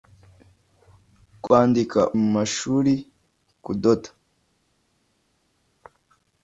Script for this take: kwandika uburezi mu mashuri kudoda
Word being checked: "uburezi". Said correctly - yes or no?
no